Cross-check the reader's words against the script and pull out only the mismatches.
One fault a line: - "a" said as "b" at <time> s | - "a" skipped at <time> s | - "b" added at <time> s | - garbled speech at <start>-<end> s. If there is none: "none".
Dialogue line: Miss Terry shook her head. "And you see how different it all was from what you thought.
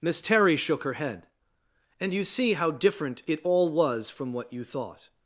none